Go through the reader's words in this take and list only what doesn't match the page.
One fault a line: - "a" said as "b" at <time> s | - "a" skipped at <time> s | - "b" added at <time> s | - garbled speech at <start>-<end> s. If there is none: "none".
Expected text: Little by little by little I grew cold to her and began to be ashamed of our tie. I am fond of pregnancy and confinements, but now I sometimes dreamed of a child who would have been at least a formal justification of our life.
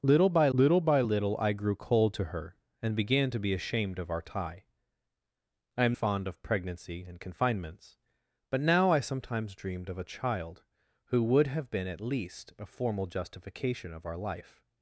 none